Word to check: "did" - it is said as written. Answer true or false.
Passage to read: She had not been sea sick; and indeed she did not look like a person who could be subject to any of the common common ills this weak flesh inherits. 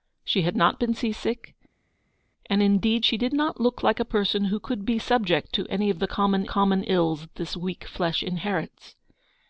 true